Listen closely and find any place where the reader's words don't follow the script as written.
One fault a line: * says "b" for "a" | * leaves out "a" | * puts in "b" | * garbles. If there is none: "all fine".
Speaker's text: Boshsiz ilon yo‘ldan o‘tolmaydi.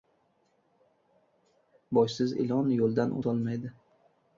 all fine